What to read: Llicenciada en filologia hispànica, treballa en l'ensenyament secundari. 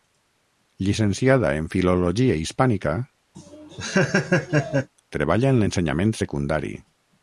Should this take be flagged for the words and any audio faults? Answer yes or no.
yes